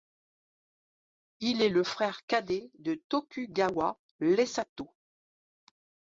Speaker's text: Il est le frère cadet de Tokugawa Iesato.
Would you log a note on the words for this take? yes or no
no